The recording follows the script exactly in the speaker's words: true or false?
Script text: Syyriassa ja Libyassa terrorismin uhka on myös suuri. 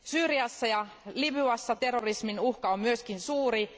true